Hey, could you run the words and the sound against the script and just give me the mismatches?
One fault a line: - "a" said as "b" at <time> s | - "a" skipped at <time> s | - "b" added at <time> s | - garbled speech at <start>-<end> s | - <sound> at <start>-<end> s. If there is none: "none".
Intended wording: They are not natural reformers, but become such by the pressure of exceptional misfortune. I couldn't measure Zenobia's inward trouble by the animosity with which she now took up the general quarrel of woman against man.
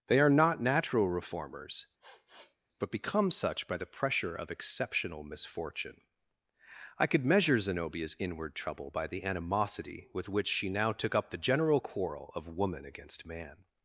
- sniff at 2.0-2.6 s
- "couldn't" said as "could" at 7.1 s